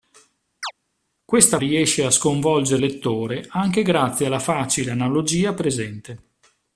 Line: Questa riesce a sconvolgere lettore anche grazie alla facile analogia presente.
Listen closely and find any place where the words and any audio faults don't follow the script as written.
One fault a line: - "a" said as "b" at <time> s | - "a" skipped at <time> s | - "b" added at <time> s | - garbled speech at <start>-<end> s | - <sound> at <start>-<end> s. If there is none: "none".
- chirp at 0.6-0.7 s